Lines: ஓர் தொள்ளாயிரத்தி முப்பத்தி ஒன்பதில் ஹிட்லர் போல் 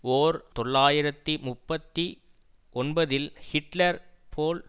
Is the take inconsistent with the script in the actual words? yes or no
no